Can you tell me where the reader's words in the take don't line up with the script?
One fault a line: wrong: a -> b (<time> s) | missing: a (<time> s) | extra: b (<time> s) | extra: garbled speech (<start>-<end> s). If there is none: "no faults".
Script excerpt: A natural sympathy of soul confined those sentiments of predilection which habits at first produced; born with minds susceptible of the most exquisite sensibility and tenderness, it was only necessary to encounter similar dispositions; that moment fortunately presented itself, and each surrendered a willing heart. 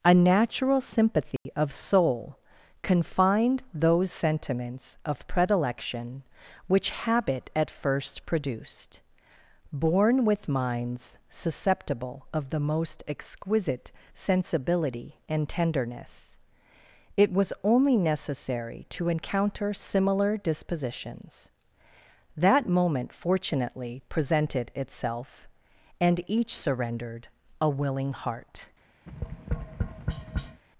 wrong: habits -> habit (6.9 s)